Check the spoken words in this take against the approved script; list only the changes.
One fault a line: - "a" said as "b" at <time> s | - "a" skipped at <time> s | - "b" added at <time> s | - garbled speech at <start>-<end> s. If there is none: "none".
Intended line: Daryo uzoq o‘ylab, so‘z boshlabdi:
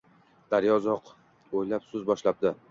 none